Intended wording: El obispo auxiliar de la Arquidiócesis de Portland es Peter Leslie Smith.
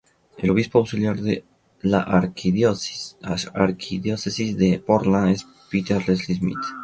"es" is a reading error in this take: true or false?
false